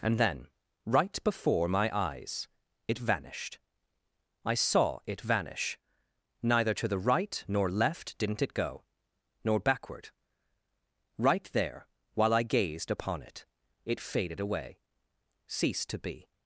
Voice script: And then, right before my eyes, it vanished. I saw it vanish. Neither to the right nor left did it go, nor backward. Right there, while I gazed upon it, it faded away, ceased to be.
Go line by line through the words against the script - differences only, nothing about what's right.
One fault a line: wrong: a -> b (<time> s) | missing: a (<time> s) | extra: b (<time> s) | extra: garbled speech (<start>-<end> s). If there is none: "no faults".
wrong: did -> didn't (8.2 s)